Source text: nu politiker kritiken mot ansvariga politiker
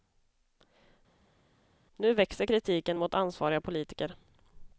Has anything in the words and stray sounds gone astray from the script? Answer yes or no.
yes